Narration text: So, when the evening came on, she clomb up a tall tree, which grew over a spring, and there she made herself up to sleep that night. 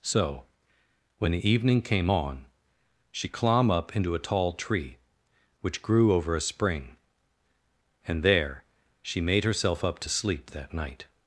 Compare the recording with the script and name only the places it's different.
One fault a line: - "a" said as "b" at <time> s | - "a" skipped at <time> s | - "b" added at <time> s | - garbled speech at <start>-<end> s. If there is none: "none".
- "into" added at 3.9 s